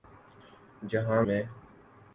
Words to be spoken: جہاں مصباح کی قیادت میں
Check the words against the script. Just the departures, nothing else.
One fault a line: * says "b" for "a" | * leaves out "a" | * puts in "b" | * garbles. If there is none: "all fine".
* leaves out "مصباح کی قیادت"